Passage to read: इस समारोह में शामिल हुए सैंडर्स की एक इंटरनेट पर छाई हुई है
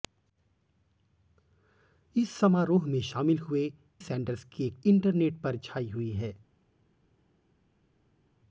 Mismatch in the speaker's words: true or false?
false